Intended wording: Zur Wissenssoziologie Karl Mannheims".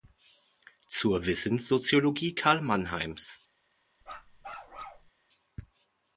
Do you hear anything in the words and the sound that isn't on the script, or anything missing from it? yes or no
yes